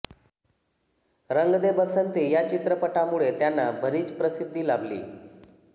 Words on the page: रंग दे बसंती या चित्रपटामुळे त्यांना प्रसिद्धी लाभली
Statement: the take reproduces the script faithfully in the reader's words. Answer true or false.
false